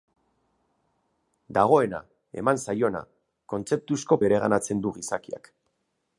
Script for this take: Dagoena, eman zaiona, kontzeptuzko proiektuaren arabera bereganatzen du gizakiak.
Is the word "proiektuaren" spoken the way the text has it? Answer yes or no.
no